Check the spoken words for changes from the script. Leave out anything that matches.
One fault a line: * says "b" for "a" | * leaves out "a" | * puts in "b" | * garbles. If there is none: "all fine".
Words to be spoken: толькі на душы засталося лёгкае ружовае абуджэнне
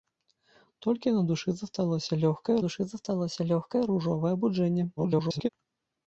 * puts in "душы засталося лёгкае"
* garbles